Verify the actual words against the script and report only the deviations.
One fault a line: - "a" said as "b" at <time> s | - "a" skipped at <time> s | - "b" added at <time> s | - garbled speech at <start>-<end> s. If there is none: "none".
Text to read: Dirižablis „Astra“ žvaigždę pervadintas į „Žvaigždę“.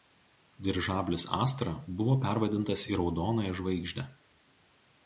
- "žvaigždę" said as "buvo" at 2.0 s
- "Raudonąją" added at 3.0 s